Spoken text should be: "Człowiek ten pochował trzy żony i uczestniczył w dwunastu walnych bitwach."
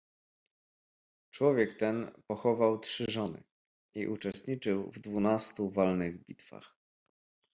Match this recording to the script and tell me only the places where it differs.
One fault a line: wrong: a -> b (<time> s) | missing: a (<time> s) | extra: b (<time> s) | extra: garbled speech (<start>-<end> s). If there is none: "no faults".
no faults